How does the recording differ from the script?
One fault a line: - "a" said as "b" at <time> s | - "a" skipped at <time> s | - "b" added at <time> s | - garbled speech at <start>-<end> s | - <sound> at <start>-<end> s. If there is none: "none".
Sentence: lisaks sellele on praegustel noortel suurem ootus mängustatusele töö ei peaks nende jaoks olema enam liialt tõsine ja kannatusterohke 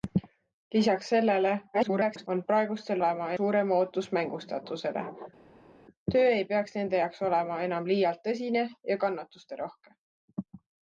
- garbled speech at 1.7-2.3 s
- "noortel" said as "olema" at 3.0 s